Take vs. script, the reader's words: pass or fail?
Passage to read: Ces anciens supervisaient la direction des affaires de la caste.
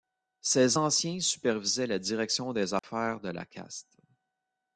pass